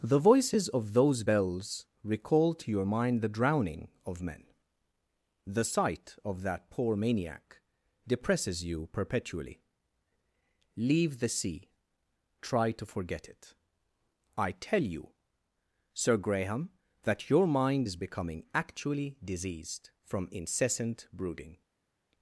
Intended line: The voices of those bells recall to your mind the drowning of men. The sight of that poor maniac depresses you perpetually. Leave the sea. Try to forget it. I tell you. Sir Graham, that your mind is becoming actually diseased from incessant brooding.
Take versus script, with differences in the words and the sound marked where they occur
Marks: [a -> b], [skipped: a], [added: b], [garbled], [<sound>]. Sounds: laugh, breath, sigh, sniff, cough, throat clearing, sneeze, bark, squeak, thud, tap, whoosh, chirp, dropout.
The voices of those bells recall to your mind the drowning of men. The sight of that poor maniac depresses you perpetually. Leave the sea. Try to forget it. I tell you. Sir Graham, that your mind is becoming actually diseased from incessant brooding.